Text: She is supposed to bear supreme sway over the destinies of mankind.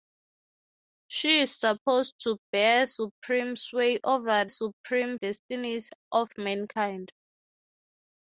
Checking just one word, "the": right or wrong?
wrong